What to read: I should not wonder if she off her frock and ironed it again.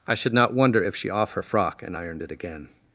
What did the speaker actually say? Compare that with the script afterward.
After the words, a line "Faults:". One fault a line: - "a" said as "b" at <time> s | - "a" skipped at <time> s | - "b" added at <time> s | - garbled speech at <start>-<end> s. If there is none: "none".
I should not wonder if she off her frock and ironed it again.
Faults:
none